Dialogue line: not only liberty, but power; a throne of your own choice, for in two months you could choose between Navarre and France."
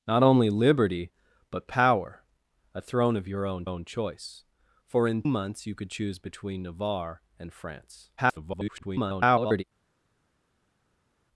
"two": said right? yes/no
no